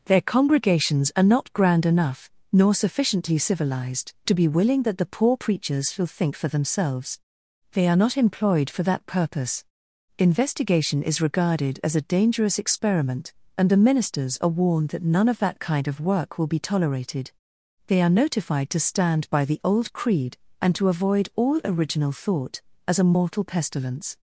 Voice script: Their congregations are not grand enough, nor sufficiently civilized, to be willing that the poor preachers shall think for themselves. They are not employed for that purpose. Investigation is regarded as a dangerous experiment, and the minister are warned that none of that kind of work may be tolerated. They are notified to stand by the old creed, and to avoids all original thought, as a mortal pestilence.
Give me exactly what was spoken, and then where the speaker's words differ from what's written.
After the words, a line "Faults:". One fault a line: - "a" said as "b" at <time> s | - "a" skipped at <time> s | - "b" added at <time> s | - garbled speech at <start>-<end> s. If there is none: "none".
Their congregations are not grand enough, nor sufficiently civilized, to be willing that the poor preachers shall think for themselves. They are not employed for that purpose. Investigation is regarded as a dangerous experiment, and the ministers are warned that none of that kind of work will be tolerated. They are notified to stand by the old creed, and to avoid all original thought, as a mortal pestilence.
Faults:
- "minister" said as "ministers" at 13.8 s
- "may" said as "will" at 16.4 s
- "avoids" said as "avoid" at 20.9 s